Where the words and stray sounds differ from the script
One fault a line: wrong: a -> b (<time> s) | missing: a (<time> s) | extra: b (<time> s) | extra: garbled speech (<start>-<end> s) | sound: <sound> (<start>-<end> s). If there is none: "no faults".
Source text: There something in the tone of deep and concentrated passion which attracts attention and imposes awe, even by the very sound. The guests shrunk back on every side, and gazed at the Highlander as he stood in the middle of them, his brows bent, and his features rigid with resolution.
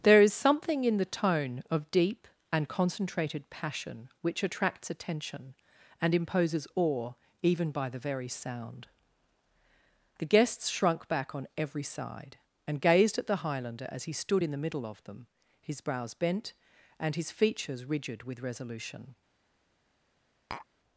extra: is (0.2 s)
sound: tap (20.5-20.7 s)